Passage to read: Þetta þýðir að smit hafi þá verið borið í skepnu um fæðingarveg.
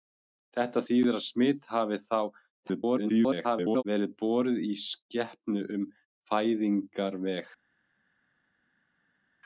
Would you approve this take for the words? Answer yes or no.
no